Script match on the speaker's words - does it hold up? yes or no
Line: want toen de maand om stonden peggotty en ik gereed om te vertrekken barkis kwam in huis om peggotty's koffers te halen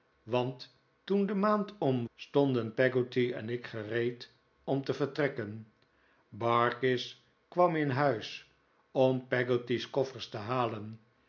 yes